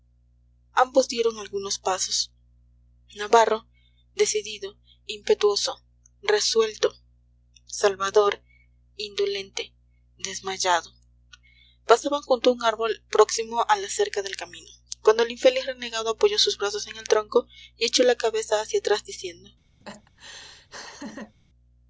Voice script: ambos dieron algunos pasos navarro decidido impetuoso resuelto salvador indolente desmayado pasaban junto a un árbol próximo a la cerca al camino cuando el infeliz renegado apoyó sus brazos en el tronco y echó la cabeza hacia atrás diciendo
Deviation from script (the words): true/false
true